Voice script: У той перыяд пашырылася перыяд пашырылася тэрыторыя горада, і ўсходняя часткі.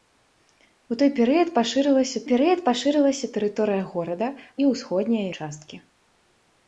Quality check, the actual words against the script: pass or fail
pass